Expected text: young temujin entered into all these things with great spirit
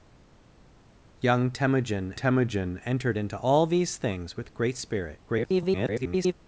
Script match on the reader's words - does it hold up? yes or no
no